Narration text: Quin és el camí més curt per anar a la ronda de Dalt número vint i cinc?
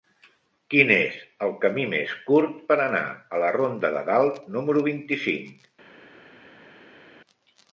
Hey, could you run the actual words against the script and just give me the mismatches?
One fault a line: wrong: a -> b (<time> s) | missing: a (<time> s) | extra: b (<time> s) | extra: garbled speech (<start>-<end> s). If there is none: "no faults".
no faults